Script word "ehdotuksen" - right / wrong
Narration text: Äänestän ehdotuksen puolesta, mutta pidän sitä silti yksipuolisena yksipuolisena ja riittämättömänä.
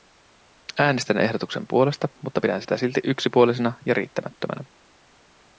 right